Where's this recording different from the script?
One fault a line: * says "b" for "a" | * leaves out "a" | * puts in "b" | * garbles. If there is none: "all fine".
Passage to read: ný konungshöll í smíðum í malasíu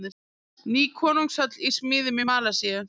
all fine